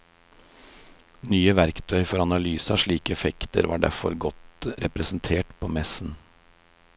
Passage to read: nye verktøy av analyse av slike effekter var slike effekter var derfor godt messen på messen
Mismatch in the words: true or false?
true